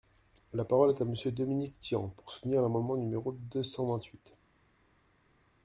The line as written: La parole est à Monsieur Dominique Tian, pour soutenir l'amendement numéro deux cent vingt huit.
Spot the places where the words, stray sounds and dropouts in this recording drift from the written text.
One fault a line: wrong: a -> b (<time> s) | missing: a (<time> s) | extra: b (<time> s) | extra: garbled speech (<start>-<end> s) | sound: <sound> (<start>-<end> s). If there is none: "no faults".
no faults